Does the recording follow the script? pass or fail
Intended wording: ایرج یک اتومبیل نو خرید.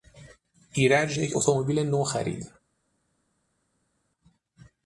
pass